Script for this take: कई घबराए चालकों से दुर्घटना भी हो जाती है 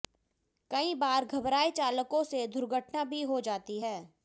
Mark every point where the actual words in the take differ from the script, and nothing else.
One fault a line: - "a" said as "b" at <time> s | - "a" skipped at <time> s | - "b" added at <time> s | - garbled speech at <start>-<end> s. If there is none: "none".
- "बार" added at 0.9 s